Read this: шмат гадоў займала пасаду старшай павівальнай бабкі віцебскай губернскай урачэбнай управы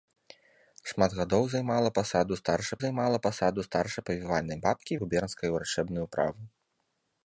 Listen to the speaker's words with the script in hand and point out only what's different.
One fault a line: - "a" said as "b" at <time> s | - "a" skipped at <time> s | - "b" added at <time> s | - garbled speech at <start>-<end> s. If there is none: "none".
- "займала пасаду старшай" added at 2.8 s
- "віцебскай" skipped at 5.0 s